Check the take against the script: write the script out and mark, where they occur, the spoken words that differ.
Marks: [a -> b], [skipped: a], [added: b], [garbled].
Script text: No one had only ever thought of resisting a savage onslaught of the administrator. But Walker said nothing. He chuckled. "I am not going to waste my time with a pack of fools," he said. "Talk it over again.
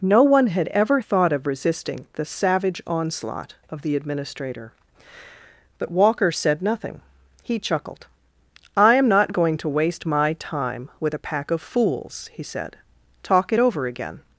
No one had [skipped: only] ever thought of resisting [a -> the] savage onslaught of the administrator. But Walker said nothing. He chuckled. "I am not going to waste my time with a pack of fools," he said. "Talk it over again.